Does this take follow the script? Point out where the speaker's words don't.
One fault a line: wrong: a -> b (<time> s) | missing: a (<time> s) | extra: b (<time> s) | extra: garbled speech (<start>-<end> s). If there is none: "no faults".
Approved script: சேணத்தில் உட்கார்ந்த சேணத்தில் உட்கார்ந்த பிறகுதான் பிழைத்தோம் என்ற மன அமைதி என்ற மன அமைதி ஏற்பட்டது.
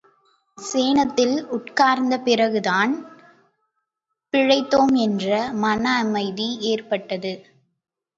missing: சேணத்தில் உட்கார்ந்த (2.2 s)
missing: என்ற மன அமைதி (6.5 s)